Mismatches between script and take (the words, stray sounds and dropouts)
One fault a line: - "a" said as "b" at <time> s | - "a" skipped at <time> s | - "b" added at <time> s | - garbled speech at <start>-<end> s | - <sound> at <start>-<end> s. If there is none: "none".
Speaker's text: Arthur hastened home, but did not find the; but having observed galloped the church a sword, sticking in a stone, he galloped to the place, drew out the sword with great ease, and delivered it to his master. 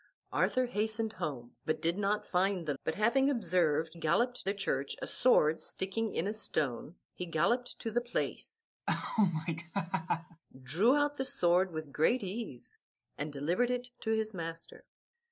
- laugh at 8.9-10.4 s